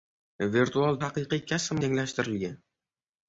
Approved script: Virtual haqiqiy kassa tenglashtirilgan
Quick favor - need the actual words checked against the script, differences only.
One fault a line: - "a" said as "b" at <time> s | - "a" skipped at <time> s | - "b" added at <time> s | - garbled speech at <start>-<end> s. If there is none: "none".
none